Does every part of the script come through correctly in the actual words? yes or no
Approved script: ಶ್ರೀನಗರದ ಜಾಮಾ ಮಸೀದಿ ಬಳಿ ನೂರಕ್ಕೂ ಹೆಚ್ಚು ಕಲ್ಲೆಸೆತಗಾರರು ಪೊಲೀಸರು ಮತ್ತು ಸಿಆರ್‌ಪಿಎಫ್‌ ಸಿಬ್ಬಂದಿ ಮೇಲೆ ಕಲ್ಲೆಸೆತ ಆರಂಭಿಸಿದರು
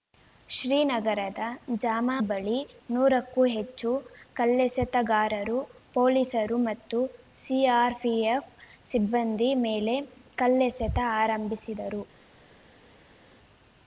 no